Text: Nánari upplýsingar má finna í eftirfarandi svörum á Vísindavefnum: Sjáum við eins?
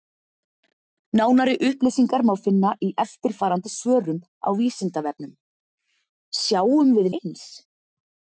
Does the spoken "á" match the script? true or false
true